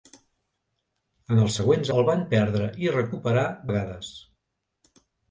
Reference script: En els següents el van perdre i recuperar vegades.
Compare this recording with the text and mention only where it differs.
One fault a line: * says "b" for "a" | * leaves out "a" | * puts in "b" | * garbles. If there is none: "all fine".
all fine